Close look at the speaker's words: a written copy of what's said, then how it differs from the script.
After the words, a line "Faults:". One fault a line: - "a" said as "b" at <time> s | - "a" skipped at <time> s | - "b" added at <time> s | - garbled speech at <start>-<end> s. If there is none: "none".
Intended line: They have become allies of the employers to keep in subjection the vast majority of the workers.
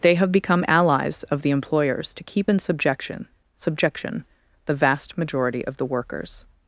They have become allies of the employers to keep in subjection subjection the vast majority of the workers.
Faults:
- "subjection" added at 3.6 s